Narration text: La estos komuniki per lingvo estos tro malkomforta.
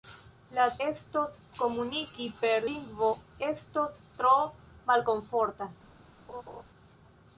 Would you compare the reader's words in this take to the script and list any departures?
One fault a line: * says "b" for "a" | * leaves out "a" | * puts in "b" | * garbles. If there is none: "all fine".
all fine